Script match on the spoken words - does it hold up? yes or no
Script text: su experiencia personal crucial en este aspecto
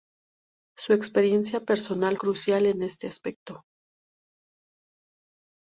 yes